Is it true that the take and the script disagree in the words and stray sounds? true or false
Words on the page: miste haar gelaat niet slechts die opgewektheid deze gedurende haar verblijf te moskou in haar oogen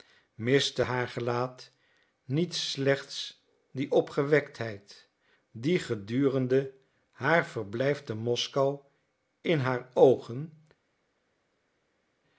true